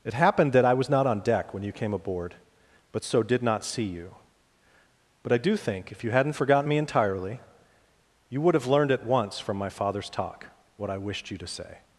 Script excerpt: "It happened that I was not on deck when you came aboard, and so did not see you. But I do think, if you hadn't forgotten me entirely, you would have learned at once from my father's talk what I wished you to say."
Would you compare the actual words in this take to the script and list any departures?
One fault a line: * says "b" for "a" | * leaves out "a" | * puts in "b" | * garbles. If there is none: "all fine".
* says "but" for "and"